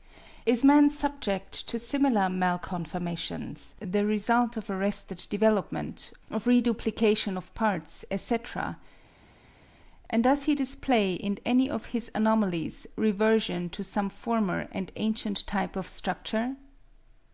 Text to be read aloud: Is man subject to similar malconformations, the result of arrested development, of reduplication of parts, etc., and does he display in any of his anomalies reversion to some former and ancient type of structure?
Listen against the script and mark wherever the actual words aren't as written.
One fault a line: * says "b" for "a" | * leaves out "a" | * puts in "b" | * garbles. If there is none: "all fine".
all fine